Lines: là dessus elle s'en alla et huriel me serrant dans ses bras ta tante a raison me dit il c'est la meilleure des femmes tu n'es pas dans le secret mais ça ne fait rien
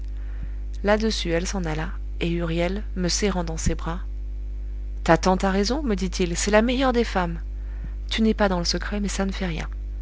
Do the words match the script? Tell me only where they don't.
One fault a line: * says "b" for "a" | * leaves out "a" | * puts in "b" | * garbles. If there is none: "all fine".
all fine